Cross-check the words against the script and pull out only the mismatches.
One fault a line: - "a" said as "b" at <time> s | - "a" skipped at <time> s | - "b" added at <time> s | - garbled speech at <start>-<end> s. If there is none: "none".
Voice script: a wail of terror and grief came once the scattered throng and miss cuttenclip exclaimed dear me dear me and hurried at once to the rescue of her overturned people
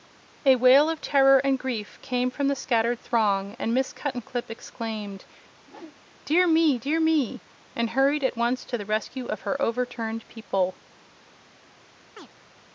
- "once" said as "from" at 2.3 s